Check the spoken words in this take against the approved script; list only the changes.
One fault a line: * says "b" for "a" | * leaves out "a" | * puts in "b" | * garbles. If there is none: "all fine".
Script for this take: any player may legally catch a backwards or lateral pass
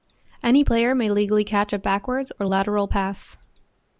all fine